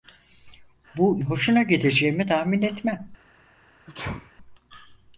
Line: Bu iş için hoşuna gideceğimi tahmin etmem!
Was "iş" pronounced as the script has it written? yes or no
no